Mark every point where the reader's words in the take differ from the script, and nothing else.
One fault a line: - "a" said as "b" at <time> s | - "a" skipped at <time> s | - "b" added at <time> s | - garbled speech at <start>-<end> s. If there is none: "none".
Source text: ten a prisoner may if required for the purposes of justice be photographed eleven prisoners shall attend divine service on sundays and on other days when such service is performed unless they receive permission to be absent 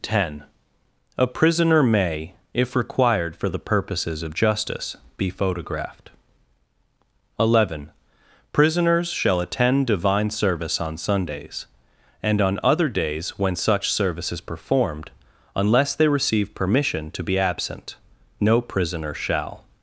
- "no prisoner shall" added at 18.4 s